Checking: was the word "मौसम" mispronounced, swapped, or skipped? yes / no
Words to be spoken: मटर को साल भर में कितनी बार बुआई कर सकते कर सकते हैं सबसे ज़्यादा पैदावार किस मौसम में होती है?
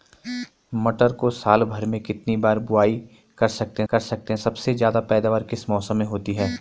no